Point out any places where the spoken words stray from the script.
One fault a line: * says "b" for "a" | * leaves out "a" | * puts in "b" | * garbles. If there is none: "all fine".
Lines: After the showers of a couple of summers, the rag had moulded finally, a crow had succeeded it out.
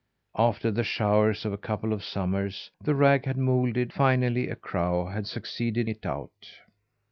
all fine